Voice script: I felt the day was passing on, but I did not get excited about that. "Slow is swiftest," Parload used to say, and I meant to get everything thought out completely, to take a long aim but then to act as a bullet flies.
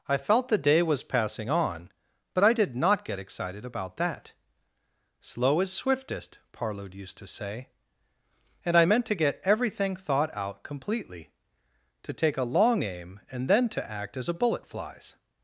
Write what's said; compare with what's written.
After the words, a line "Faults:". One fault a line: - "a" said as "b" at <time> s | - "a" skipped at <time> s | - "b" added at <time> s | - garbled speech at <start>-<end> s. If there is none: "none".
I felt the day was passing on, but I did not get excited about that. "Slow is swiftest," Parload used to say, and I meant to get everything thought out completely, to take a long aim and then to act as a bullet flies.
Faults:
- "but" said as "and" at 13.3 s